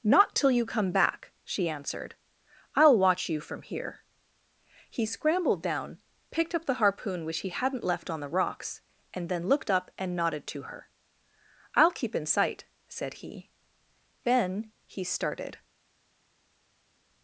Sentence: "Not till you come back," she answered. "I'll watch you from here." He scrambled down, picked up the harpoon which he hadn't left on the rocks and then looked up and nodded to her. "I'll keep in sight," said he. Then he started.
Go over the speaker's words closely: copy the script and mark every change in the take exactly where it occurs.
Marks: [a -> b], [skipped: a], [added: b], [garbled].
"Not till you come back," she answered. "I'll watch you from here." He scrambled down, picked up the harpoon which he hadn't left on the rocks and then looked up and nodded to her. "I'll keep in sight," said he. Then he started.